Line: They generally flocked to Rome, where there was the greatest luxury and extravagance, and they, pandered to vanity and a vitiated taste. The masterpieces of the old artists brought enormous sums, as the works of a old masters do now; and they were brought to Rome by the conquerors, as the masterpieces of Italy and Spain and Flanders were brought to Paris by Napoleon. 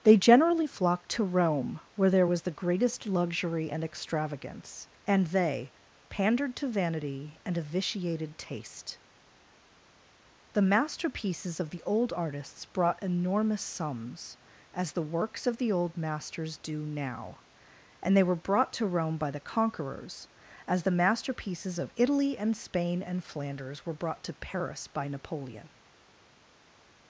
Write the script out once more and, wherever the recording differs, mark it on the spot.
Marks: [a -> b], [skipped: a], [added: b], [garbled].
They generally flocked to Rome, where there was the greatest luxury and extravagance, and they, pandered to vanity and a vitiated taste. The masterpieces of the old artists brought enormous sums, as the works of [a -> the] old masters do now; and they were brought to Rome by the conquerors, as the masterpieces of Italy and Spain and Flanders were brought to Paris by Napoleon.